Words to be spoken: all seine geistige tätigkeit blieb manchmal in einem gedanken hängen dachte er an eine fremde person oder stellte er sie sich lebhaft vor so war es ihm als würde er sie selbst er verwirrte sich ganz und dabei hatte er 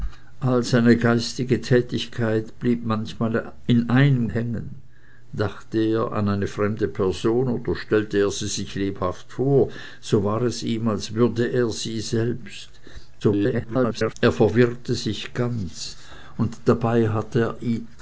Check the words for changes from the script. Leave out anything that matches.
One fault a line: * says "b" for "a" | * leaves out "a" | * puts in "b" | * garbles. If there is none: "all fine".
* leaves out "gedanken"
* garbles